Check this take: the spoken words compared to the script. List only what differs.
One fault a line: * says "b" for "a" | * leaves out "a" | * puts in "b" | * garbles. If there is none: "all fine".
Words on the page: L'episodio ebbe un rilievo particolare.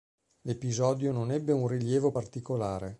* puts in "non"